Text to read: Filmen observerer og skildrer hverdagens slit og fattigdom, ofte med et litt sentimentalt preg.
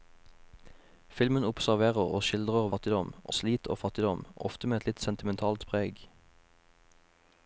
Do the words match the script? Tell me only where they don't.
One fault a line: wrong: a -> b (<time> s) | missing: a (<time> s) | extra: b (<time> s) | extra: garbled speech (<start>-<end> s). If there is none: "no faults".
wrong: hverdagens -> fattigdom (2.7 s)